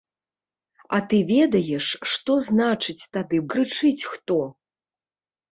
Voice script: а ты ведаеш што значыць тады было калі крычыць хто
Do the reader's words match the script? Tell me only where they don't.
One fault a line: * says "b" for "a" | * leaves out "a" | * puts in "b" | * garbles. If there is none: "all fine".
* leaves out "было калі"